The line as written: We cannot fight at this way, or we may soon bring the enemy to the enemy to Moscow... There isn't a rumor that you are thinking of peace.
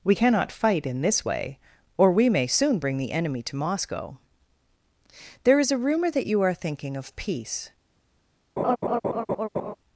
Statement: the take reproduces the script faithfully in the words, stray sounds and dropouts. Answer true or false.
false